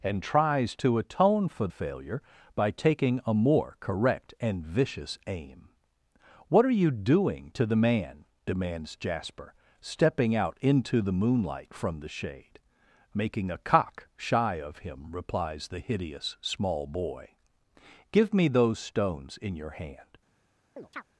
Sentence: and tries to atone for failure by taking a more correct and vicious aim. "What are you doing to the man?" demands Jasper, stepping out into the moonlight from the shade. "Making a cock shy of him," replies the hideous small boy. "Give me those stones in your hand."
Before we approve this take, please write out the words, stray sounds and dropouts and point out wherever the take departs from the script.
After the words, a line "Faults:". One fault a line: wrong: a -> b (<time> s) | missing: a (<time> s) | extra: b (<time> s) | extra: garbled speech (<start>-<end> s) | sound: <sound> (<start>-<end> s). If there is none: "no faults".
and tries to atone for failure by taking a more correct and vicious aim. "What are you doing to the man?" demands Jasper, stepping out into the moonlight from the shade. "Making a cock shy of him," replies the hideous small boy. "Give me those stones in your hand."
Faults:
sound: chirp (20.8-21.0 s)